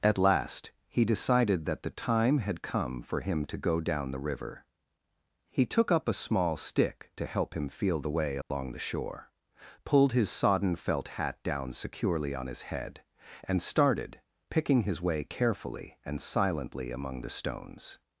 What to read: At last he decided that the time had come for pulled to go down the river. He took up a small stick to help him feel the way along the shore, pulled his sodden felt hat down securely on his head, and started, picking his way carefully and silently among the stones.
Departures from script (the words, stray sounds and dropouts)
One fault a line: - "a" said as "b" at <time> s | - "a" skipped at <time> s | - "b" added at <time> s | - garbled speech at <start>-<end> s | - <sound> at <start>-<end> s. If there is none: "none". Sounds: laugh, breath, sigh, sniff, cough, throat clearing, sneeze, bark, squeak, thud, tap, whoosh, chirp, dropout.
- "pulled" said as "him" at 3.2 s
- dropout at 8.4-8.5 s